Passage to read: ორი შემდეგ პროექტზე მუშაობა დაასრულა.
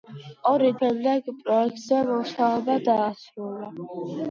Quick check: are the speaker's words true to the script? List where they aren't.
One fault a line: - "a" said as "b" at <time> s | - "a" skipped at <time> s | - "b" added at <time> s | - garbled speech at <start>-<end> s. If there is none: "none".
none